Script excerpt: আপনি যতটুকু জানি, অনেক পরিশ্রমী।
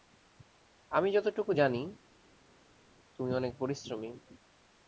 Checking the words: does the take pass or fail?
fail